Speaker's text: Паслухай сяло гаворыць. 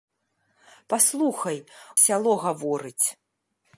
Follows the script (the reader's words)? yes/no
yes